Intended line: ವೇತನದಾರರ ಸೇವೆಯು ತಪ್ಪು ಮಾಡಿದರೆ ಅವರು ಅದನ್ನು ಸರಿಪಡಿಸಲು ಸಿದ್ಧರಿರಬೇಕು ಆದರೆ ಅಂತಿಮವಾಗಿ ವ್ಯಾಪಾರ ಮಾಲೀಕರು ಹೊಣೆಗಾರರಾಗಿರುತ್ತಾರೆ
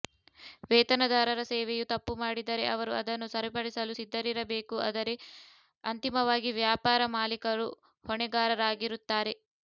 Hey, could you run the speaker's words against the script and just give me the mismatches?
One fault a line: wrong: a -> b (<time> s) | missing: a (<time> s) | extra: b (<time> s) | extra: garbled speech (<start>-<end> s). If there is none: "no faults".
no faults